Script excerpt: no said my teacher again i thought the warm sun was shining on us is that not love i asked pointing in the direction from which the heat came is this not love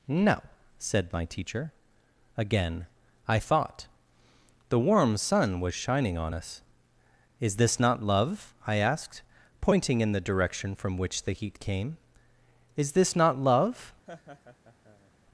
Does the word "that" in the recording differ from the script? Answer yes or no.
yes